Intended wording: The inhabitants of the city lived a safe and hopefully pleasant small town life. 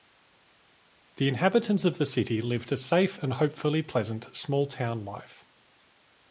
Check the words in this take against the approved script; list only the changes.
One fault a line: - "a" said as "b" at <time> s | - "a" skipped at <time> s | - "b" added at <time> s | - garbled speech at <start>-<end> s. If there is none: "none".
none